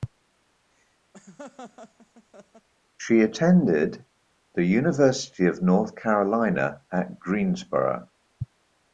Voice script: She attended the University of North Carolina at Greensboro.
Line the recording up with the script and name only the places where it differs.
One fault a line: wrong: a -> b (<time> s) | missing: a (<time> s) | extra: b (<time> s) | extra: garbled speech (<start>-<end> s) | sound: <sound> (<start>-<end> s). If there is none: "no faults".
sound: laugh (1.1-2.7 s)